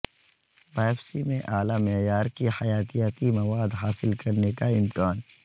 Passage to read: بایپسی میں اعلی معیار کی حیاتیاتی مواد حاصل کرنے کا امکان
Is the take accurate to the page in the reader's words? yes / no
yes